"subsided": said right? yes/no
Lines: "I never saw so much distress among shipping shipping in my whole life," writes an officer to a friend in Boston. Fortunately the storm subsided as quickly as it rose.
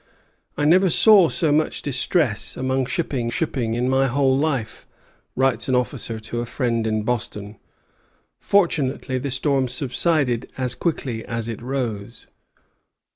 yes